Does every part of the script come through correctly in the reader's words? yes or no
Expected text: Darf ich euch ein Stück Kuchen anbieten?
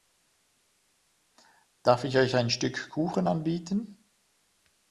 yes